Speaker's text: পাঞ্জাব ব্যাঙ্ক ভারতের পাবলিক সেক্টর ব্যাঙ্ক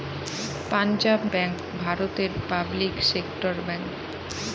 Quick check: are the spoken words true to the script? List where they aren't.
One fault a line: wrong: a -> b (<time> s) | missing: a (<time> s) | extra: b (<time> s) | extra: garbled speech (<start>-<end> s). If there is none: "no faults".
no faults